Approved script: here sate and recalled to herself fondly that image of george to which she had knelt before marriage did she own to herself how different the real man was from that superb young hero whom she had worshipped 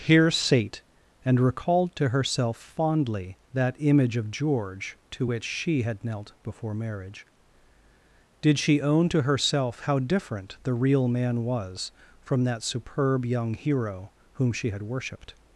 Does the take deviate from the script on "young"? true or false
false